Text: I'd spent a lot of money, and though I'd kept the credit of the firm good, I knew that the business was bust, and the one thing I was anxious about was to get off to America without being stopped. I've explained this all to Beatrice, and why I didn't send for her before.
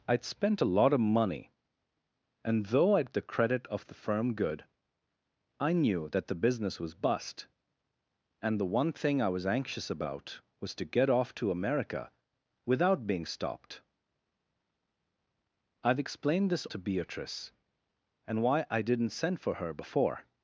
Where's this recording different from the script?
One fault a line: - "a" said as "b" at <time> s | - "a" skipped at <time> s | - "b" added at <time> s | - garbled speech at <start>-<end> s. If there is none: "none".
- "kept" skipped at 3.1 s
- "all" skipped at 16.7 s